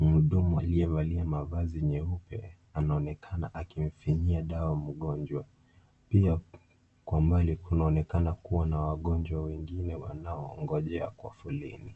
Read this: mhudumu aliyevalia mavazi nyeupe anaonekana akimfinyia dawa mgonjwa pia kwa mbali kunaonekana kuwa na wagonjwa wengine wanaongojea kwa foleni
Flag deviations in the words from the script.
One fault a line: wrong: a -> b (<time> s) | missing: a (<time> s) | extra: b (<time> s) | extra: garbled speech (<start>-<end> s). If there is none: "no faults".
no faults